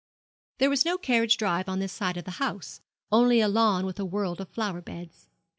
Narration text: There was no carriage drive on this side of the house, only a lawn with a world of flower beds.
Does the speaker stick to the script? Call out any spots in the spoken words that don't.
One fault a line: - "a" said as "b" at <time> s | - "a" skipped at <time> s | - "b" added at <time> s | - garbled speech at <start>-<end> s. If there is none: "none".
none